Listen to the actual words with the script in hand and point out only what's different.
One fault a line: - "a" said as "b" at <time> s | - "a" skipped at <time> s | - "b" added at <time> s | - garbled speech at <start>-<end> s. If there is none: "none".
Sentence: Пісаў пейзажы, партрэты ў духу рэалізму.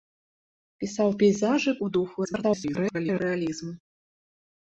- "партрэты" skipped at 1.7 s
- garbled speech at 2.2-3.2 s